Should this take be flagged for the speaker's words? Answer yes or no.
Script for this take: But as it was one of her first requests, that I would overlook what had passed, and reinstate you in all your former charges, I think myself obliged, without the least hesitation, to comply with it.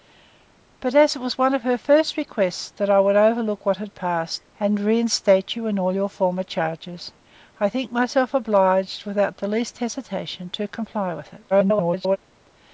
yes